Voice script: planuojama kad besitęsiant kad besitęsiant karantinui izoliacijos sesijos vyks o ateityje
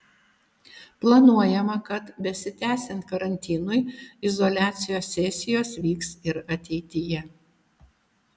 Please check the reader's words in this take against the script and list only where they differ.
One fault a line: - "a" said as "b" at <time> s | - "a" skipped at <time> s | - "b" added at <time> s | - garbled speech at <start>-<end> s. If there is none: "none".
- "kad besitęsiant" skipped at 3.0 s
- "o" said as "ir" at 6.3 s